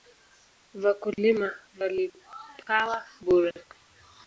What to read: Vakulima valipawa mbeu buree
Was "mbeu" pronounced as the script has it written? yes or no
no